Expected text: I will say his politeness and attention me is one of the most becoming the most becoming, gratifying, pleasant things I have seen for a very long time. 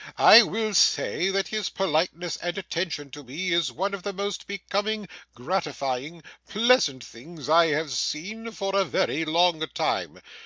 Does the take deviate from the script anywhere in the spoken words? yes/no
yes